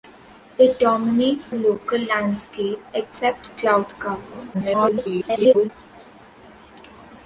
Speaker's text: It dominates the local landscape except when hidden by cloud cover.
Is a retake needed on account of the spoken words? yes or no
yes